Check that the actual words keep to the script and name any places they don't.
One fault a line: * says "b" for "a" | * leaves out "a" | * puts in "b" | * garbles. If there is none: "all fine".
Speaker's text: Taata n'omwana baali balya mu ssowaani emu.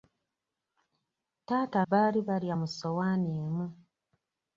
* leaves out "n'omwana"